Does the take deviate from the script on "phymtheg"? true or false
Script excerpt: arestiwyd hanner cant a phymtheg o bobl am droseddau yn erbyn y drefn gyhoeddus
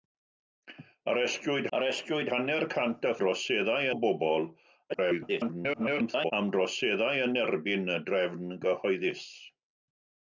true